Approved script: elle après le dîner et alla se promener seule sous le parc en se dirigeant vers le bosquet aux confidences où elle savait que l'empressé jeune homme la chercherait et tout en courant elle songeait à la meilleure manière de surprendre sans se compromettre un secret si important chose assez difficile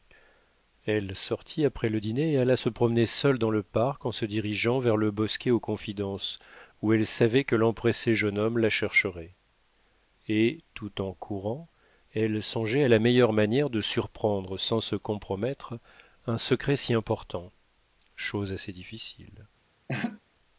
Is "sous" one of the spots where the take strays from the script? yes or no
yes